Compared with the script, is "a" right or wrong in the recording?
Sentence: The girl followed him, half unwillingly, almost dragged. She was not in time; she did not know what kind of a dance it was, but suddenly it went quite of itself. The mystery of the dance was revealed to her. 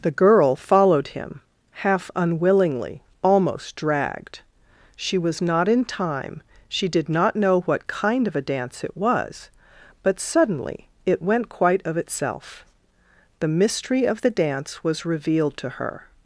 right